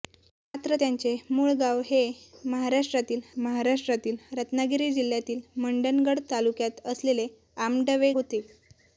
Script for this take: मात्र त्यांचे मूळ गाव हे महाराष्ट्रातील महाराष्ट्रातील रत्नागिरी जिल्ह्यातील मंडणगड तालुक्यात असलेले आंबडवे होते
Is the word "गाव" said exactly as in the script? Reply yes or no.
yes